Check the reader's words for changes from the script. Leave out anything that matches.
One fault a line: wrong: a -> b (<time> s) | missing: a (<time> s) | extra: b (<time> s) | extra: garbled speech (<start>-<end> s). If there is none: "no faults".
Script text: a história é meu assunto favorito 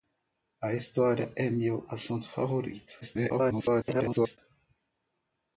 extra: garbled speech (3.0-4.4 s)